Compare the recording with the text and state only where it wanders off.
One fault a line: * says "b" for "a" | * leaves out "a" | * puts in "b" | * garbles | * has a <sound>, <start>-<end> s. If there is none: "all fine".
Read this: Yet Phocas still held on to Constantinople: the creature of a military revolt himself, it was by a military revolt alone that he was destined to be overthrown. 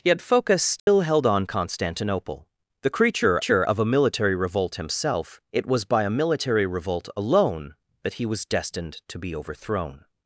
* has a dropout, 0.8-0.9 s
* leaves out "to"
* puts in "creature"